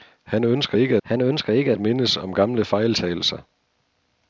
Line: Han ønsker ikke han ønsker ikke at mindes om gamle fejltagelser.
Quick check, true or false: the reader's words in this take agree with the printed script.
true